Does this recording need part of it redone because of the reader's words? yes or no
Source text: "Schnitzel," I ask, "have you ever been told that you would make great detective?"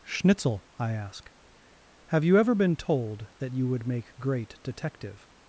no